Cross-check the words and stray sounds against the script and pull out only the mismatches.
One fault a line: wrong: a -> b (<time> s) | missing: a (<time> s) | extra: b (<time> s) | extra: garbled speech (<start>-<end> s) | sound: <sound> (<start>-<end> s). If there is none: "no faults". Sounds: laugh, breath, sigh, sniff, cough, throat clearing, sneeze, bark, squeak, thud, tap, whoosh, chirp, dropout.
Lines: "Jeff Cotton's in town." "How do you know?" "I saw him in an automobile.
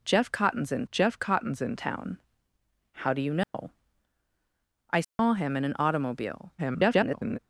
extra: jeff Cotton's in (0.9 s)
sound: dropout (3.4-3.5 s)
sound: dropout (5.0-5.2 s)
extra: garbled speech (6.6-7.4 s)